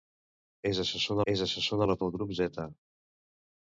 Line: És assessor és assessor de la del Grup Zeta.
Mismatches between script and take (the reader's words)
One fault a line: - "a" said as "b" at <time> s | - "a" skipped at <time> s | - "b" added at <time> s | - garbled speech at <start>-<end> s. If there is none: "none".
none